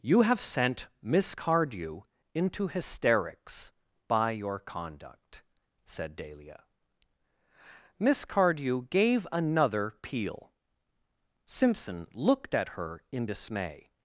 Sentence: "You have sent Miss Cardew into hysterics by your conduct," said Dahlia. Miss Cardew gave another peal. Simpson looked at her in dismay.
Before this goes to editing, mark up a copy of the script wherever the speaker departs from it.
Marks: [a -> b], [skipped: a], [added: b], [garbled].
"You have sent Miss Cardew into hysterics by your conduct," said Dahlia. Miss Cardew gave another peal. Simpson looked at her in dismay.